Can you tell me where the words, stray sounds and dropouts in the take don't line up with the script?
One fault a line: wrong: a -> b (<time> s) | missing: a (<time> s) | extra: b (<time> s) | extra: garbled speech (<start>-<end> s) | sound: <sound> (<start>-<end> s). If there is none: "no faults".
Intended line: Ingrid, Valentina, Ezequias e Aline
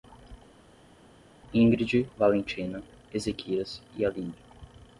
no faults